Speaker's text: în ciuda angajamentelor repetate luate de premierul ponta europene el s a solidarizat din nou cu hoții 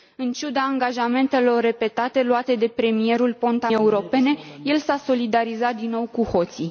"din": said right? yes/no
yes